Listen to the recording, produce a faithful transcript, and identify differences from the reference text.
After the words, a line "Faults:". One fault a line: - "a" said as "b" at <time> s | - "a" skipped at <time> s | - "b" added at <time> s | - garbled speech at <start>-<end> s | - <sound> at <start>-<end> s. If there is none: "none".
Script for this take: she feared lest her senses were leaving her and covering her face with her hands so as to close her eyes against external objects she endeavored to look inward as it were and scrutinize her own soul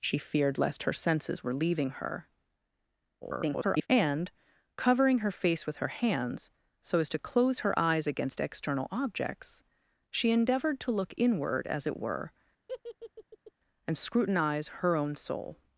she feared lest her senses were leaving her [garbled] and covering her face with her hands so as to close her eyes against external objects she endeavored to look inward as it were and scrutinize her own soul
Faults:
- garbled speech at 3.2-3.9 s
- laugh at 12.7-13.5 s